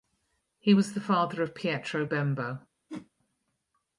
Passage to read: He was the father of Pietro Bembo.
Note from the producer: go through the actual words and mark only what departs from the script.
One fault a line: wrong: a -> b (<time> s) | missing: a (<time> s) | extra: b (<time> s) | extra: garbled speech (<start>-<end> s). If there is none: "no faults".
no faults